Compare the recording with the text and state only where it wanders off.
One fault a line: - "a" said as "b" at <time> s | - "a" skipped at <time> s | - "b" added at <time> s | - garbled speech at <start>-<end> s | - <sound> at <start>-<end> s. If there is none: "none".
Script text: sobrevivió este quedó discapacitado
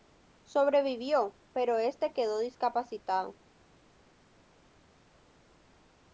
- "pero" added at 1.5 s